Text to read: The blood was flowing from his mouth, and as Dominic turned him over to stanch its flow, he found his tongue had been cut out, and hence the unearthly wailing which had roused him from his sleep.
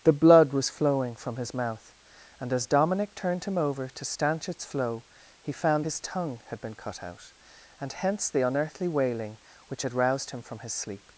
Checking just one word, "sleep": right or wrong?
right